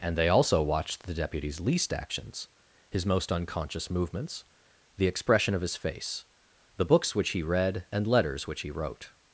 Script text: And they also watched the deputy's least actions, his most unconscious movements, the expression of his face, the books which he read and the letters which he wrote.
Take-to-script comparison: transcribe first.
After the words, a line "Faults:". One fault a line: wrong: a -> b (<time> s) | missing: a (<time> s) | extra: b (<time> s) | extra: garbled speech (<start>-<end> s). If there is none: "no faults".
And they also watched the deputy's least actions, his most unconscious movements, the expression of his face, the books which he read and letters which he wrote.
Faults:
missing: the (8.1 s)